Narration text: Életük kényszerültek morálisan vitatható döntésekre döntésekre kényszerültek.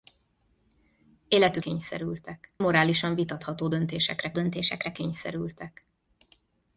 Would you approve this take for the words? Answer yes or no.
yes